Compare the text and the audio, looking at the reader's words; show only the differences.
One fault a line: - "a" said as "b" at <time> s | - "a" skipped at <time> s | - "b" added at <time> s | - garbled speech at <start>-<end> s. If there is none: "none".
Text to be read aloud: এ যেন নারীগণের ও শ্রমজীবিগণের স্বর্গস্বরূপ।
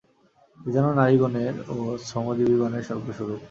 none